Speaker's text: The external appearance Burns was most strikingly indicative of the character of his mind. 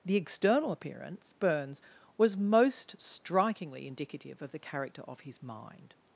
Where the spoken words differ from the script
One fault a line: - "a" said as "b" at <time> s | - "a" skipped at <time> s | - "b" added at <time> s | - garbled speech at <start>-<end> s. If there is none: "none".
none